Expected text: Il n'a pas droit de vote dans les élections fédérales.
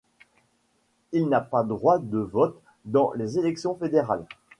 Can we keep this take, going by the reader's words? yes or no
yes